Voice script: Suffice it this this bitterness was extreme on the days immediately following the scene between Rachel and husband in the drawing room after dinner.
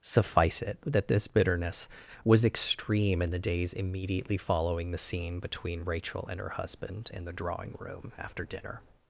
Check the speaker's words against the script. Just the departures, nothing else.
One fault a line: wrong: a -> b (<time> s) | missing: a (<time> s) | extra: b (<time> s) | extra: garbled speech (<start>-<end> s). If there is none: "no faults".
wrong: this -> that (0.8 s)
wrong: on -> in (3.2 s)
extra: her (6.4 s)